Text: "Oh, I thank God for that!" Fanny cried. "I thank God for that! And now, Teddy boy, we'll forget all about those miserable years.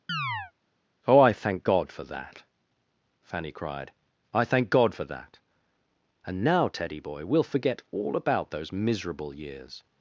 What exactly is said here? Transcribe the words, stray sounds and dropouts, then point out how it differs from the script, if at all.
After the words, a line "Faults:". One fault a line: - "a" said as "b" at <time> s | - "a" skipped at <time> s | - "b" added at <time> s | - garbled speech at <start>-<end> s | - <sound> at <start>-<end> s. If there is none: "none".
"Oh, I thank God for that!" Fanny cried. "I thank God for that! And now, Teddy boy, we'll forget all about those miserable years.
Faults:
- chirp at 0.1-0.5 s